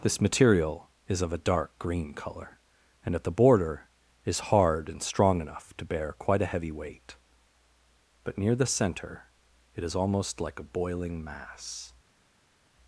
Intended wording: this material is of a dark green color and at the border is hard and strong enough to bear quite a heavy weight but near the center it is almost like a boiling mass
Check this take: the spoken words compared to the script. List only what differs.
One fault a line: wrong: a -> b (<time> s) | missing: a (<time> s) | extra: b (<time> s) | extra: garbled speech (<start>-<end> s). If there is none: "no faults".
no faults